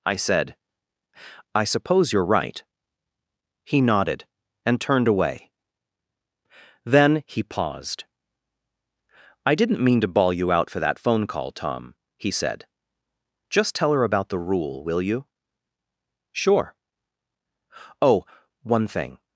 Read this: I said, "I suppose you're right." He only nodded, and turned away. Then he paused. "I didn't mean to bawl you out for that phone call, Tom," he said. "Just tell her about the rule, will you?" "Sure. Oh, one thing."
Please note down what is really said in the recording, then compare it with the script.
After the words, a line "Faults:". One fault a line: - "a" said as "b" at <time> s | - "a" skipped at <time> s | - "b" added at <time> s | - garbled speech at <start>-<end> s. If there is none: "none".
I said, "I suppose you're right." He nodded, and turned away. Then he paused. "I didn't mean to bawl you out for that phone call, Tom," he said. "Just tell her about the rule, will you?" "Sure. Oh, one thing."
Faults:
- "only" skipped at 3.8 s